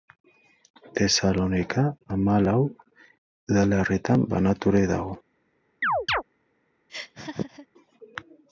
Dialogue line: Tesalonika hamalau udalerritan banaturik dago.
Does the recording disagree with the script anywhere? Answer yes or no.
no